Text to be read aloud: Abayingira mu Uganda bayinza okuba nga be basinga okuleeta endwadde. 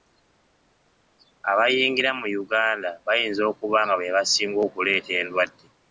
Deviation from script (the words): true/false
false